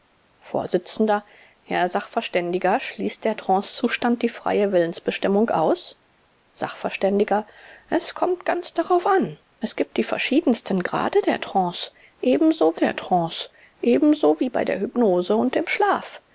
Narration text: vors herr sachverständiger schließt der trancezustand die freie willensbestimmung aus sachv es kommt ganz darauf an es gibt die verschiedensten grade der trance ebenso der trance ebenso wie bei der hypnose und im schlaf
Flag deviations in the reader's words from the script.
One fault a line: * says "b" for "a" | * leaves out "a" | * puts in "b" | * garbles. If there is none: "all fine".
all fine